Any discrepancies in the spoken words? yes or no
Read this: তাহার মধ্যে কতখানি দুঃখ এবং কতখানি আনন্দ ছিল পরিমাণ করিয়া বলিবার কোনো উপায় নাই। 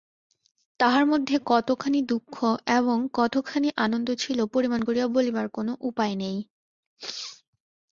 no